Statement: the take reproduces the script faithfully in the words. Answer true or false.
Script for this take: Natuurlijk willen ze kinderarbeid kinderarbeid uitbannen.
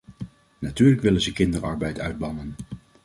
false